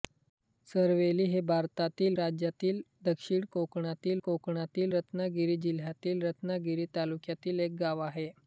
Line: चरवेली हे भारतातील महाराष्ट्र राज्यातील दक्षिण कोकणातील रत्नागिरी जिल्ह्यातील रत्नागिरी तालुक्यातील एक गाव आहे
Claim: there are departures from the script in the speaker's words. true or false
true